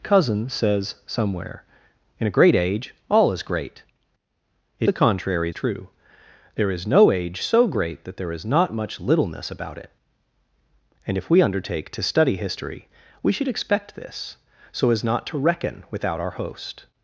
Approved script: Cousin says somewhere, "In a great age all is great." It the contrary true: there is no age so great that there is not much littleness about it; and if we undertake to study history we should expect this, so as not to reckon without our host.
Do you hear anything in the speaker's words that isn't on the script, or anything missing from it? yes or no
no